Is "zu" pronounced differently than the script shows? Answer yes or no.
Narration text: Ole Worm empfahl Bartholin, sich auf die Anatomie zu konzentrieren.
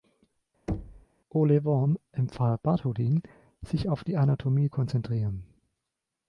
yes